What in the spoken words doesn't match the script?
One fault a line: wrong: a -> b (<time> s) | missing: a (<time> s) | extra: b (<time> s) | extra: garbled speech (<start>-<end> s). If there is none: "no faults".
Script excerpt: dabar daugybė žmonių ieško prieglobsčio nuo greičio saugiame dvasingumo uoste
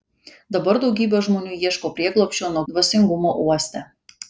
missing: greičio saugiame (2.6 s)